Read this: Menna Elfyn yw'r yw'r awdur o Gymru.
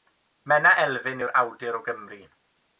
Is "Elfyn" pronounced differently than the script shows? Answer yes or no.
no